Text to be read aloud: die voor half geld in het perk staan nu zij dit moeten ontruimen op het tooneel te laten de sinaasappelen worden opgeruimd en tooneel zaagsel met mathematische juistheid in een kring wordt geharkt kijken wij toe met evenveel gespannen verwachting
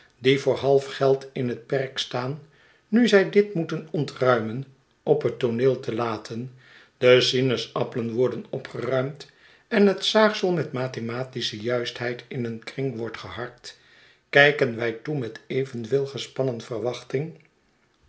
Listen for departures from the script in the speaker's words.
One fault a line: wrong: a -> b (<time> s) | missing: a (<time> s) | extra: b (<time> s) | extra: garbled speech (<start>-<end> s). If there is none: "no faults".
wrong: tooneel -> het (9.9 s)